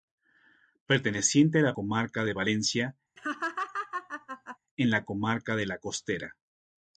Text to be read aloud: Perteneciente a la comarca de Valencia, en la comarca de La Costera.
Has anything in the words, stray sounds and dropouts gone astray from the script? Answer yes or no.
yes